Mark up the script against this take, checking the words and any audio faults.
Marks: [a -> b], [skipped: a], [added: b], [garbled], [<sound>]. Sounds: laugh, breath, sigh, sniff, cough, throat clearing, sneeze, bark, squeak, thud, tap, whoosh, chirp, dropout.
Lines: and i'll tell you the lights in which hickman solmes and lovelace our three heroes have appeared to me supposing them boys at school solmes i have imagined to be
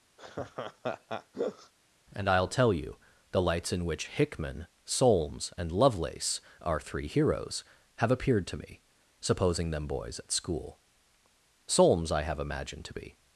[laugh] and i'll tell you the lights in which hickman solmes and lovelace our three heroes have appeared to me supposing them boys at school solmes i have imagined to be